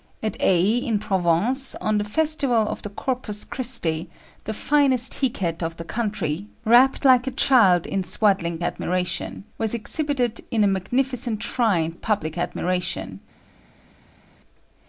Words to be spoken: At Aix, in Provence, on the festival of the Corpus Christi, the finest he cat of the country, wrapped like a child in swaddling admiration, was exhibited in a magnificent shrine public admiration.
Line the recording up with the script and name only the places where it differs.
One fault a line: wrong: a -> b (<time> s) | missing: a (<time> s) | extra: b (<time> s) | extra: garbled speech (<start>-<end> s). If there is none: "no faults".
no faults